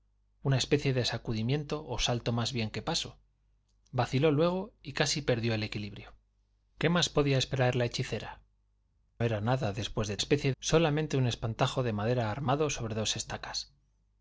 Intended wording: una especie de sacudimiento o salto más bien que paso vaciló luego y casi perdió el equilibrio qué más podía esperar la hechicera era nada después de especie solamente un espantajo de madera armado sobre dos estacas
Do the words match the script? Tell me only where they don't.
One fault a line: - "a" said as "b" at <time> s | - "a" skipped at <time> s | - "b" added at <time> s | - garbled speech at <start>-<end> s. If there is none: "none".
none